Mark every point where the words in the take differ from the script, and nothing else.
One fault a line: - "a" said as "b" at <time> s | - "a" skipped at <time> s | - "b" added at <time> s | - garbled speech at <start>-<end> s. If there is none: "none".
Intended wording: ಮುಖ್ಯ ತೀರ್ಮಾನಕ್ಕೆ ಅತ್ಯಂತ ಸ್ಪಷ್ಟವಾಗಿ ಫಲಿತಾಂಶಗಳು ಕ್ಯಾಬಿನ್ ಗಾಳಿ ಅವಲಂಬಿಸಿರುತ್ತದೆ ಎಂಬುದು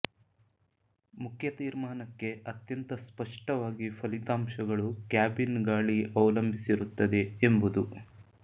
none